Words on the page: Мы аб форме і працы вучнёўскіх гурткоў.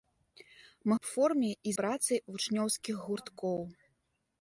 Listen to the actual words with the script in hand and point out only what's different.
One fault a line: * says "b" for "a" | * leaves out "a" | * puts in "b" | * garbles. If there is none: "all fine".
all fine